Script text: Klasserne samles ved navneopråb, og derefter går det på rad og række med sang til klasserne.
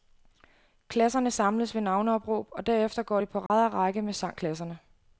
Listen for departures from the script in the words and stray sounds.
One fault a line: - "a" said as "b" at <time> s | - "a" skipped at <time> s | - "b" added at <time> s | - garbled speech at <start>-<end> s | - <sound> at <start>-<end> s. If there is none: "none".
- dropout at 3.5-3.5 s
- "til" skipped at 4.4 s